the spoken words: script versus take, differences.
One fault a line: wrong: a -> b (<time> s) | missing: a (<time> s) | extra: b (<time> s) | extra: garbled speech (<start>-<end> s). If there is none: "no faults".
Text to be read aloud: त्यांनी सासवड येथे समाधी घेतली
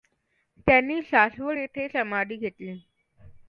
no faults